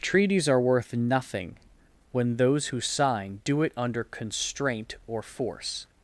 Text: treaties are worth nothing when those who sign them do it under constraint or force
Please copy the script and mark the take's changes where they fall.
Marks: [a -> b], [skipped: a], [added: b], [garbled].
treaties are worth nothing when those who sign [skipped: them] do it under constraint or force